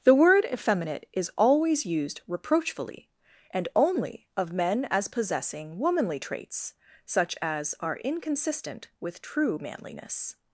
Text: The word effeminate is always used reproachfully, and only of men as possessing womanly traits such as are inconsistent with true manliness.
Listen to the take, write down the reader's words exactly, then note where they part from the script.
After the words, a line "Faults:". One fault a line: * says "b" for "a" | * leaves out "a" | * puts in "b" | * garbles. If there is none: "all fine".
The word effeminate is always used reproachfully, and only of men as possessing womanly traits such as are inconsistent with true manliness.
Faults:
all fine